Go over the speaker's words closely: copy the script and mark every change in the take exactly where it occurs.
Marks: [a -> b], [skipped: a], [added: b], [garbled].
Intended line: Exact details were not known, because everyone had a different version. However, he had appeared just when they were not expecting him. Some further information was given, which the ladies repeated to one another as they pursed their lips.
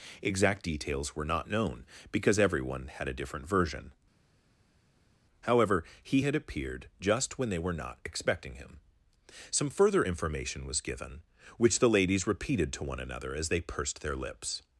Exact details were not known, because everyone had a different version. However, he had appeared just when they were not expecting him. Some further information was given, which the ladies repeated to one another as they pursed their lips.